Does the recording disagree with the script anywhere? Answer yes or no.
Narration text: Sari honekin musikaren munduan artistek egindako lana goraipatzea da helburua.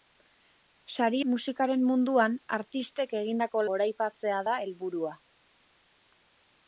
yes